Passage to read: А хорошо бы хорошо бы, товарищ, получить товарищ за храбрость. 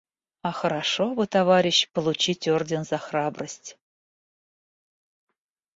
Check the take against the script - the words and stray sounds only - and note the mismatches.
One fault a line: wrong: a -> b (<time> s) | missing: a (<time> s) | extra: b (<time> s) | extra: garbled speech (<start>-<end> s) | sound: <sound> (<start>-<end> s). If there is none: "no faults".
missing: хорошо бы (1.3 s)
wrong: товарищ -> орден (2.5 s)